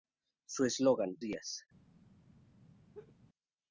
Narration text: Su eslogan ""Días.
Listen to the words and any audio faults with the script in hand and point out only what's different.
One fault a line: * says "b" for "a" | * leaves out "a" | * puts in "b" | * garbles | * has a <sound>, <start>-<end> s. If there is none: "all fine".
* has a laugh, 2.9-3.1 s